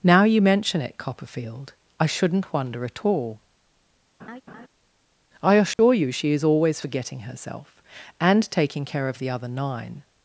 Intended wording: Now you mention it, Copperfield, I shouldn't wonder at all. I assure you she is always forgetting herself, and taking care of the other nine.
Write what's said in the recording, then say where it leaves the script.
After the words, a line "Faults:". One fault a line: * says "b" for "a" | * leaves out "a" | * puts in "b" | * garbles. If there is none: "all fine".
Now you mention it, Copperfield, I shouldn't wonder at all. I assure you she is always forgetting herself, and taking care of the other nine.
Faults:
all fine